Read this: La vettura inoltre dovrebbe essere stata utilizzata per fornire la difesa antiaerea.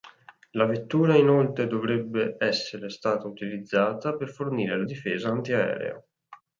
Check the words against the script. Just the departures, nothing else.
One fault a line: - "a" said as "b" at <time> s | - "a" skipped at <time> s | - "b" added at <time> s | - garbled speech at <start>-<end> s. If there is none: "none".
none